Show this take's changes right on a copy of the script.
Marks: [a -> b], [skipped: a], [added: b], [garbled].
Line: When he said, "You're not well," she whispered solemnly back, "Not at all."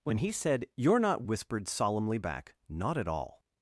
When he said, "You're not [skipped: well," she] whispered solemnly back, "Not at all."